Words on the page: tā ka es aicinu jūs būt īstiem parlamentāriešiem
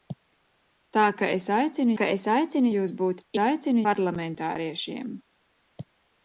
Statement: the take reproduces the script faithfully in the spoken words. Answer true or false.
false